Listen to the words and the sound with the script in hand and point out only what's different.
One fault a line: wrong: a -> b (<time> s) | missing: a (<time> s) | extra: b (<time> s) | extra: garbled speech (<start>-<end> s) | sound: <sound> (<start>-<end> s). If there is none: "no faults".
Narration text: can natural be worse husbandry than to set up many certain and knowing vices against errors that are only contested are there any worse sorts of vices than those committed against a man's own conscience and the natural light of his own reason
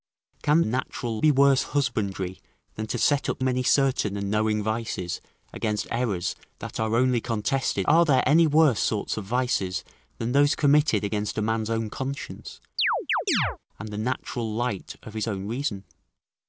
sound: chirp (12.8-13.6 s)